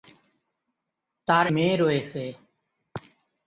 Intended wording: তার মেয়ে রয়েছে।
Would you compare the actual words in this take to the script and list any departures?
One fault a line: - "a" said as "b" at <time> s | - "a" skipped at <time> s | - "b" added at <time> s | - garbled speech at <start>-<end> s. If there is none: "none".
none